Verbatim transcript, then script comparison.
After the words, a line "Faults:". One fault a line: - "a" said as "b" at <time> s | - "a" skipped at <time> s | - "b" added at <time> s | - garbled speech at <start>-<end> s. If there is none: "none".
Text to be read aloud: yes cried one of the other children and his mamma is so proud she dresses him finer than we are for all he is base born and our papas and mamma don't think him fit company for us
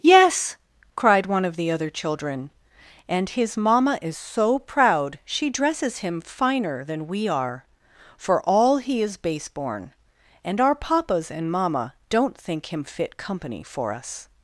yes cried one of the other children and his mamma is so proud she dresses him finer than we are for all he is base born and our papas and mamma don't think him fit company for us
Faults:
none